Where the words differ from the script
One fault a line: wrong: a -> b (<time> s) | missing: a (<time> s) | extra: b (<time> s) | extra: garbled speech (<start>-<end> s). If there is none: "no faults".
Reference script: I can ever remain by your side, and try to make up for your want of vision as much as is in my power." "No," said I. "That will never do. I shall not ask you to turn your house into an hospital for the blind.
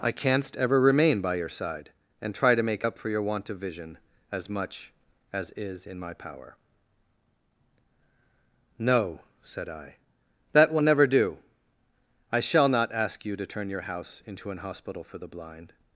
wrong: can -> canst (0.1 s)